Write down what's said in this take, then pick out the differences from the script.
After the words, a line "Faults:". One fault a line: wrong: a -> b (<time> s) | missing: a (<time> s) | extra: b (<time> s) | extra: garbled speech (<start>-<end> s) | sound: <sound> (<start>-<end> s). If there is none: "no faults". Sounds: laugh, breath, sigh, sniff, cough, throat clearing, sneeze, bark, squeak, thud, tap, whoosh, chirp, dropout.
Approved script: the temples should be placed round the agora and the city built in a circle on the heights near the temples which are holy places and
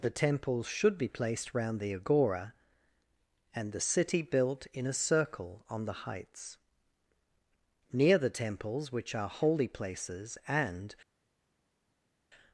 the temples should be placed round the agora and the city built in a circle on the heights near the temples which are holy places and
Faults:
no faults